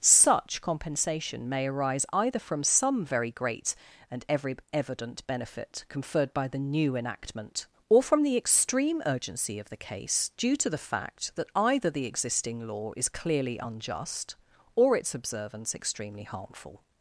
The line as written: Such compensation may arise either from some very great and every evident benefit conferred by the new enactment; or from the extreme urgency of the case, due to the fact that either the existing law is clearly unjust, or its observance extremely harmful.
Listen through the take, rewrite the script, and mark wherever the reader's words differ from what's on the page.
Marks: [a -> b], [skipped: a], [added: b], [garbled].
Such compensation may arise either from some very great and every evident benefit conferred by the new enactment; or from the extreme urgency of the case, due to the fact that either the existing law is clearly unjust, or its observance extremely harmful.